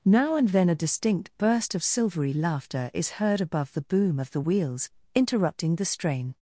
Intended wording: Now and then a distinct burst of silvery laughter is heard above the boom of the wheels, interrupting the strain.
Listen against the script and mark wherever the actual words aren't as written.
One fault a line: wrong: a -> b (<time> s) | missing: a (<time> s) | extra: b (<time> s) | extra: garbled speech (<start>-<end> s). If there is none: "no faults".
no faults